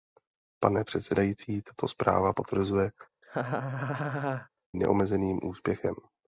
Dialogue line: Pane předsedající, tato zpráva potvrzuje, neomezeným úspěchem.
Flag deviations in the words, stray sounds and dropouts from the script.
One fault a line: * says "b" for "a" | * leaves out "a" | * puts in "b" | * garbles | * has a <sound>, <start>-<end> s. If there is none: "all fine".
* has a laugh, 3.2-4.5 s